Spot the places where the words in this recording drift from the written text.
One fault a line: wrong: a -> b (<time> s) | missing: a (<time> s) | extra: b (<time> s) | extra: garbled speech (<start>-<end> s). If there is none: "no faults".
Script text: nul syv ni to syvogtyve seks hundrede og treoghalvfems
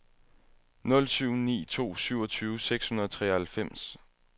no faults